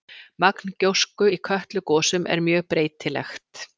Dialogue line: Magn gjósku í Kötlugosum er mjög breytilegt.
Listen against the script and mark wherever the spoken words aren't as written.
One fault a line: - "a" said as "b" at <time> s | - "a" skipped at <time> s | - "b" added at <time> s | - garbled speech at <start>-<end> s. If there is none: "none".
none